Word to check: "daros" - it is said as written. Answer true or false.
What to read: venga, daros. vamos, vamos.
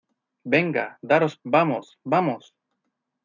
true